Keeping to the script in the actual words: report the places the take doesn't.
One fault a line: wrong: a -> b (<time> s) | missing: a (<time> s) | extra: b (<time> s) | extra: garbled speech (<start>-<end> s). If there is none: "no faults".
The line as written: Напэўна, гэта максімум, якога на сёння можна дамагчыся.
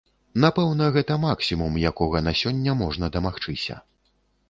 no faults